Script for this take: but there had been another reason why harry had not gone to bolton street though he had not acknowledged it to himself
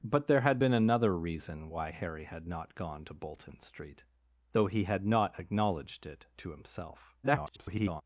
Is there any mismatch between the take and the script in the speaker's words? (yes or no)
yes